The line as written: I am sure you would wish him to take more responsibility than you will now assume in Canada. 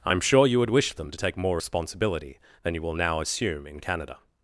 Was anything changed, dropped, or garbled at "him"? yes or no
yes